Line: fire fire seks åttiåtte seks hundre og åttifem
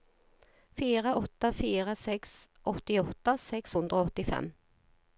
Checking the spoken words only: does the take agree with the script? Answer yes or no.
no